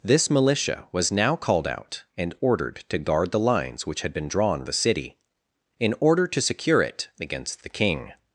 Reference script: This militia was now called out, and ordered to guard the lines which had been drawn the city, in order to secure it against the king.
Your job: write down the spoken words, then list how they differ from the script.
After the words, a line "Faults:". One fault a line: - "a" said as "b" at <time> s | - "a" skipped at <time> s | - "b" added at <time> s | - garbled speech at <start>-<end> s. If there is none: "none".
This militia was now called out, and ordered to guard the lines which had been drawn the city, in order to secure it against the king.
Faults:
none